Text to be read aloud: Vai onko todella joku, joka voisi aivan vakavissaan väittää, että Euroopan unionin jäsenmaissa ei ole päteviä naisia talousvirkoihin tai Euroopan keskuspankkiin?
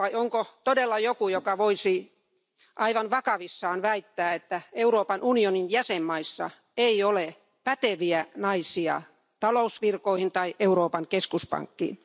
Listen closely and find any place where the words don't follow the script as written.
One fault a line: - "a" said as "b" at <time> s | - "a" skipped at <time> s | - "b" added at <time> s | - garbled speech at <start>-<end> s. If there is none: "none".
none